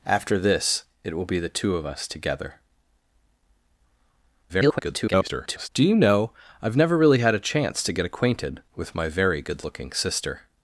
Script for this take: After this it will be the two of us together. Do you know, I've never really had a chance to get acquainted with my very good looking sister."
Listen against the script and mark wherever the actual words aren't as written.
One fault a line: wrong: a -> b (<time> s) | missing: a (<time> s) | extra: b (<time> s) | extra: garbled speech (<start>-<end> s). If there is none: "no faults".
extra: garbled speech (4.5-5.7 s)